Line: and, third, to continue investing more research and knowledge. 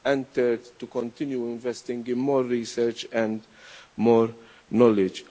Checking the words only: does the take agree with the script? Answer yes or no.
no